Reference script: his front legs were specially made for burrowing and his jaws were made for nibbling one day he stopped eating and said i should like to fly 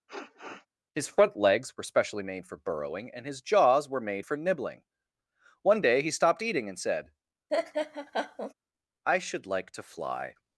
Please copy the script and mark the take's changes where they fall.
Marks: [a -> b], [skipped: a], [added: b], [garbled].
his front legs were specially made for burrowing and his jaws were made for nibbling one day he stopped eating and said i should like to fly